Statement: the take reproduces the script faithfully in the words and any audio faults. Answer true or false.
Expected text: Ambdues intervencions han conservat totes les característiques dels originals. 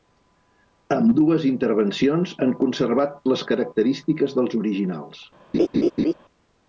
false